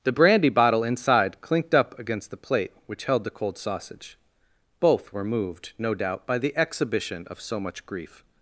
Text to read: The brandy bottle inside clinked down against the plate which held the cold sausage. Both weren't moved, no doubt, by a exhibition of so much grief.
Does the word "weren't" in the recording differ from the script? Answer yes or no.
yes